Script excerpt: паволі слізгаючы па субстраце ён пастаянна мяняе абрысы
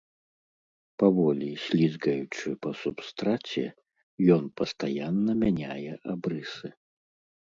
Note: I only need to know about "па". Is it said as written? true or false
true